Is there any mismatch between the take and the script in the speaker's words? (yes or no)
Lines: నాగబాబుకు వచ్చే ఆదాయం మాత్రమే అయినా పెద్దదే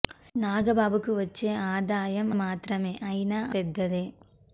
no